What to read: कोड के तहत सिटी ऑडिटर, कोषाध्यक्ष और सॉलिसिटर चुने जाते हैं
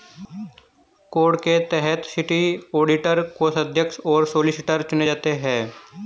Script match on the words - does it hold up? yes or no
yes